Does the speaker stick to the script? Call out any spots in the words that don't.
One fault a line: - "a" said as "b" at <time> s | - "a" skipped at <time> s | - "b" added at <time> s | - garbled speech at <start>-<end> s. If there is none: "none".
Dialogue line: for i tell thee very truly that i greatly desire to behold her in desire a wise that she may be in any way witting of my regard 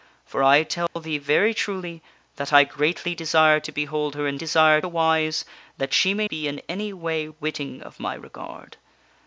none